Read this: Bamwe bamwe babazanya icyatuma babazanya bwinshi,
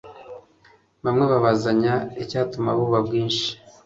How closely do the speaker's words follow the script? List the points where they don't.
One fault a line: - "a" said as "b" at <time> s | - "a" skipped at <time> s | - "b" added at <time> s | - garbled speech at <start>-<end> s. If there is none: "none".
- "bamwe" skipped at 1.2 s
- "babazanya" said as "buba" at 2.8 s